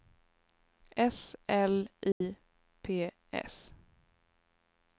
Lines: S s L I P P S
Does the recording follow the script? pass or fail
fail